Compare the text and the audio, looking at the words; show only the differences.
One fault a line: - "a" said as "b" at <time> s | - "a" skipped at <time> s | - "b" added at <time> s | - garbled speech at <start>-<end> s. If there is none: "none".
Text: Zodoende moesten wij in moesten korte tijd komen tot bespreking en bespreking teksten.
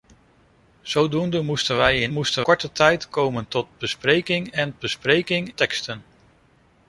none